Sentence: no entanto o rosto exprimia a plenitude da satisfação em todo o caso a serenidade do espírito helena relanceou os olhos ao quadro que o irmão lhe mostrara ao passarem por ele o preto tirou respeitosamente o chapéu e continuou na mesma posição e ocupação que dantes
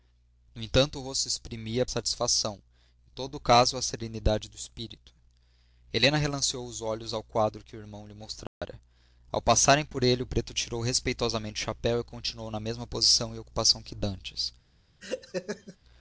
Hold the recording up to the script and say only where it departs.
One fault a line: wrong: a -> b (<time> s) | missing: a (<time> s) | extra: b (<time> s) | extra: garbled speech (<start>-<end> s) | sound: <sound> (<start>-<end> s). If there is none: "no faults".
missing: plenitude da (1.9 s)
sound: dropout (8.5-8.6 s)
sound: laugh (15.0-15.8 s)